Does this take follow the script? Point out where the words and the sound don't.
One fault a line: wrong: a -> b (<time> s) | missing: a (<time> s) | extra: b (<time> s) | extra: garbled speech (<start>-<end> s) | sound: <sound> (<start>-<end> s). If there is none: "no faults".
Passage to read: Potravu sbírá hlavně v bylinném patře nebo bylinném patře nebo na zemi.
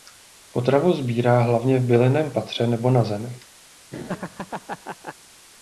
missing: bylinném patře nebo (2.9 s)
sound: laugh (3.9-5.2 s)